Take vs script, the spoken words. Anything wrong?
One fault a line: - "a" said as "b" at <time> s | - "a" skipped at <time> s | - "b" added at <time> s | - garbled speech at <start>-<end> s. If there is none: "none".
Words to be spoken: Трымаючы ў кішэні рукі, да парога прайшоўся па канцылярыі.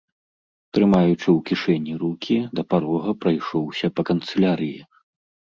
none